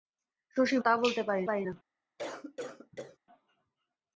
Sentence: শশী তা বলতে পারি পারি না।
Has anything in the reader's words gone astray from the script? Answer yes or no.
no